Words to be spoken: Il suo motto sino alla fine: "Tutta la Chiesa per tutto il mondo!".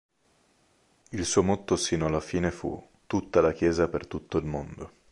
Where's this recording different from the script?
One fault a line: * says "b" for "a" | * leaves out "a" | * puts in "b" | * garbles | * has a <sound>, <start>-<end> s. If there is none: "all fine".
* puts in "fu"